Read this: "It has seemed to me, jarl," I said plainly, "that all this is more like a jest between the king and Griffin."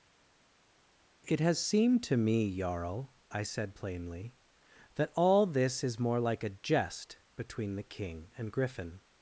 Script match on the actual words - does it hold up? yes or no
yes